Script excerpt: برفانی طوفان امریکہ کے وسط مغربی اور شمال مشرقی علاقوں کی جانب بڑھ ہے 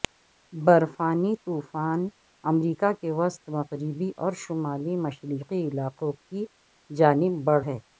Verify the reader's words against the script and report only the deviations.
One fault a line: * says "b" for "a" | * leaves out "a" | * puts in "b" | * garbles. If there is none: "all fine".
all fine